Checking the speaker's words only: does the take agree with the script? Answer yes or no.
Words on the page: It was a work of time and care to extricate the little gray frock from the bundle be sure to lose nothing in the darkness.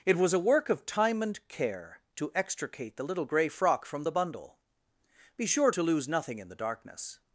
yes